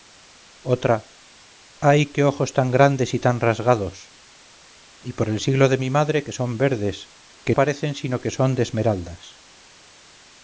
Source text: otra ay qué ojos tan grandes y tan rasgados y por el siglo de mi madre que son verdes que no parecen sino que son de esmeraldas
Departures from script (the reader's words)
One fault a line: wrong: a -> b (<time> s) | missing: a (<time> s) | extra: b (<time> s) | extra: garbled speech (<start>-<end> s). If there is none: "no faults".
missing: no (7.6 s)